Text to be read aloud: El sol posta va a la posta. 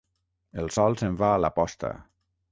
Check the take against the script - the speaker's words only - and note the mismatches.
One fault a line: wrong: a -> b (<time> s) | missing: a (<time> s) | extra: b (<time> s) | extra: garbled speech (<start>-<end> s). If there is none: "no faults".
wrong: posta -> se'n (1.0 s)